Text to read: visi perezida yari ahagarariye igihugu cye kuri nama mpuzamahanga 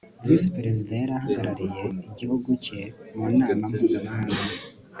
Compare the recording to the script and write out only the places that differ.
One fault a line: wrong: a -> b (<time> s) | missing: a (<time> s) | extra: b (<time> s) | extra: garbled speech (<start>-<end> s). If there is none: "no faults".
wrong: kuri -> mu (3.1 s)